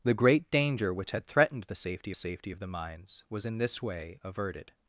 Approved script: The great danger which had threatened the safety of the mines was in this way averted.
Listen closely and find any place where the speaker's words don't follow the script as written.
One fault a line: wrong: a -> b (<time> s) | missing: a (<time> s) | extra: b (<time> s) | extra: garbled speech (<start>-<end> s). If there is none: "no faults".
extra: safety (2.1 s)